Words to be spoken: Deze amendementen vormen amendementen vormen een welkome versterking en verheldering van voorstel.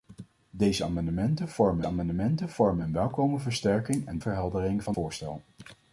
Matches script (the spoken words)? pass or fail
pass